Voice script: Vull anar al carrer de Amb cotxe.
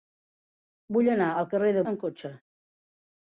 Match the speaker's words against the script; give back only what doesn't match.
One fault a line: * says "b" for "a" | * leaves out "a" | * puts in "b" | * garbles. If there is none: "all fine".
all fine